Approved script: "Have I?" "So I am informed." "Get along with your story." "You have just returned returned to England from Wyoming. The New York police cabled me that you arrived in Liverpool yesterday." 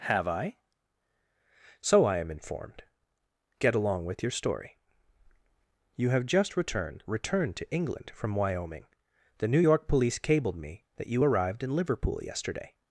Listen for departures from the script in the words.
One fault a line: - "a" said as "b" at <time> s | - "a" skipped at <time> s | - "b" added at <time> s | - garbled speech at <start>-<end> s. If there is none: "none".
none